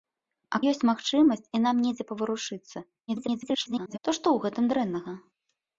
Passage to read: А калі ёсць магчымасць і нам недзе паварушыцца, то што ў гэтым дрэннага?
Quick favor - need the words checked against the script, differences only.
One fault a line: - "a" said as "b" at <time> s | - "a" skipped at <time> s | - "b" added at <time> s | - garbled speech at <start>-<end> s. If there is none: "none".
- "калі" skipped at 0.6 s
- garbled speech at 3.1-4.0 s